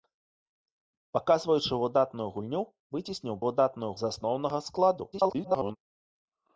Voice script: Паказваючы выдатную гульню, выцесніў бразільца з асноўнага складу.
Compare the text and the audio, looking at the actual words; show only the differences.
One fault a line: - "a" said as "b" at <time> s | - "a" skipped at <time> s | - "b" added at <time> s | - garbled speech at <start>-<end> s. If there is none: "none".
- "бразільца" said as "выдатную" at 3.5 s
- garbled speech at 5.1-5.8 s